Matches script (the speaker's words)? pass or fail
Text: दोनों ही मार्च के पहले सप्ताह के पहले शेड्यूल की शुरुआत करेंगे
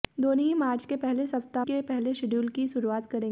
pass